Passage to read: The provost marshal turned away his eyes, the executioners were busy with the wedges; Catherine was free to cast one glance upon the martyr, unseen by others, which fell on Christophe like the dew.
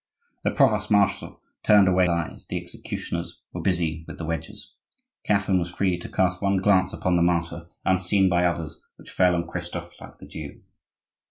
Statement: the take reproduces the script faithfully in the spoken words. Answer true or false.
false